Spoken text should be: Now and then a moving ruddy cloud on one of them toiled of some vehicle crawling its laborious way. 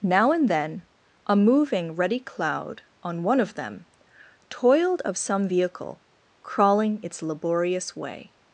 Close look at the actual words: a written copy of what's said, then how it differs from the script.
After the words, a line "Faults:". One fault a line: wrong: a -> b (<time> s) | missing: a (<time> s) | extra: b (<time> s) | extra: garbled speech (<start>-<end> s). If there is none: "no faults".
Now and then a moving ruddy cloud on one of them toiled of some vehicle crawling its laborious way.
Faults:
no faults